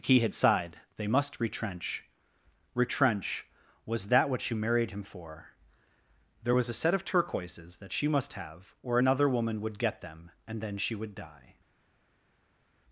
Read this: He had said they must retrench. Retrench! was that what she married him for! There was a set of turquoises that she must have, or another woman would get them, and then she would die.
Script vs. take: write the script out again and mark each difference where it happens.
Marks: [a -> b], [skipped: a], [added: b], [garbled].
He had [said -> sighed] they must retrench. Retrench! was that what she married him for! There was a set of turquoises that she must have, or another woman would get them, and then she would die.